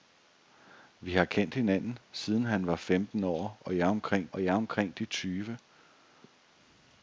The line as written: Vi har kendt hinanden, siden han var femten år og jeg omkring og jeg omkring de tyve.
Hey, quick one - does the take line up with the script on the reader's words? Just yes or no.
yes